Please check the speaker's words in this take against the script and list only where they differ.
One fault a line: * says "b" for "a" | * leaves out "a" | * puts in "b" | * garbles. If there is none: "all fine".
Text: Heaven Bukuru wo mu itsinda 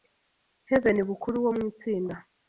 all fine